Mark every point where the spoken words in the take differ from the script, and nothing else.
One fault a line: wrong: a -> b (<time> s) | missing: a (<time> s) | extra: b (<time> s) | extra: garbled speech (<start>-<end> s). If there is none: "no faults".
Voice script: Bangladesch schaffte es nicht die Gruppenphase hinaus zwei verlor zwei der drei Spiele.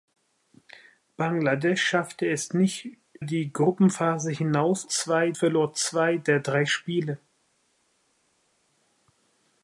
no faults